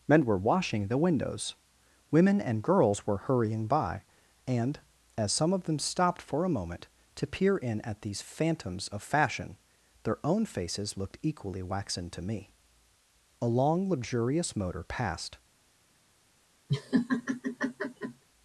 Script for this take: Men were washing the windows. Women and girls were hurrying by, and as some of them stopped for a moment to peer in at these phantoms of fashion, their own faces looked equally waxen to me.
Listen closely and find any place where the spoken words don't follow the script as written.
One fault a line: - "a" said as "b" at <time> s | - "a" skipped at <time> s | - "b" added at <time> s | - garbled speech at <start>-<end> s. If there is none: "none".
- "A long luxurious motor passed" added at 13.4 s